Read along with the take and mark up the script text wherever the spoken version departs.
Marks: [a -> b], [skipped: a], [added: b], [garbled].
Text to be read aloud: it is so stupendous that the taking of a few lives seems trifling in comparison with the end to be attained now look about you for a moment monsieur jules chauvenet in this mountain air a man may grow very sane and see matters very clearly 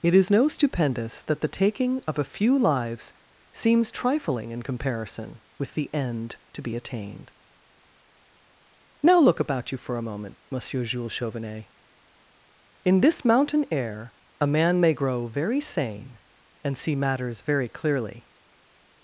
it is [so -> no] stupendous that the taking of a few lives seems trifling in comparison with the end to be attained now look about you for a moment monsieur jules chauvenet in this mountain air a man may grow very sane and see matters very clearly